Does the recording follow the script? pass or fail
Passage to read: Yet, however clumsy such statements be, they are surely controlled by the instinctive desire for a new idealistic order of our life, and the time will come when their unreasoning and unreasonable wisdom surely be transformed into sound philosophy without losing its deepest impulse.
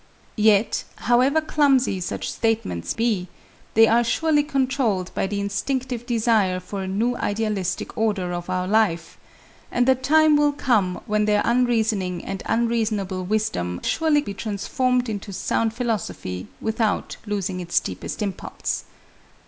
pass